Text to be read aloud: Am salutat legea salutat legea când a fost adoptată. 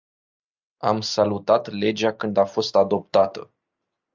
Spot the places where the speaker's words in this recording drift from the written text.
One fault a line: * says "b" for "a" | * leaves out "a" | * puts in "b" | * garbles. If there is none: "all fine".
* leaves out "salutat legea"